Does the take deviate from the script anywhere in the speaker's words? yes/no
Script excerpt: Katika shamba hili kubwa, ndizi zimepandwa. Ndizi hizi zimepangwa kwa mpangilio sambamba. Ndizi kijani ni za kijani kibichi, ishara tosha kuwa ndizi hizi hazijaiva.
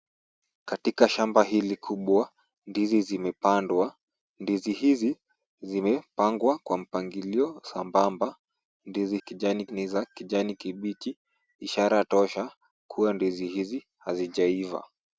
no